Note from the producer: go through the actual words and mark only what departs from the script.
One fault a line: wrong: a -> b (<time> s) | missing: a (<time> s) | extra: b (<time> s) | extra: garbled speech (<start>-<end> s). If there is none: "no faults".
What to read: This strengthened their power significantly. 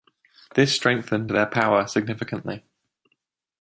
no faults